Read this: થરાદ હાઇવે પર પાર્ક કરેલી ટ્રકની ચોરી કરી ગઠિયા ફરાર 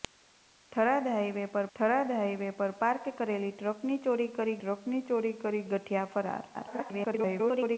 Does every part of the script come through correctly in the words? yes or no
no